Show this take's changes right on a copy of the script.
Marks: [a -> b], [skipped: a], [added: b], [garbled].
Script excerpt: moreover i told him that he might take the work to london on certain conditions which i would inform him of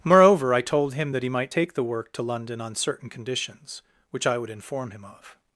moreover i told him that he might take the work to london on certain conditions which i would inform him of